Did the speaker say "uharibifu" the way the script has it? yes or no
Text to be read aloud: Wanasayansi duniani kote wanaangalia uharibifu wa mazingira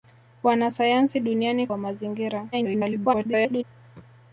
no